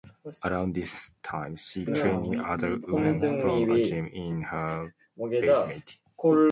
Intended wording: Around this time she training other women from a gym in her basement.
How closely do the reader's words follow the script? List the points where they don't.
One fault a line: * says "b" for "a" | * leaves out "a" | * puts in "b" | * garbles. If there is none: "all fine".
all fine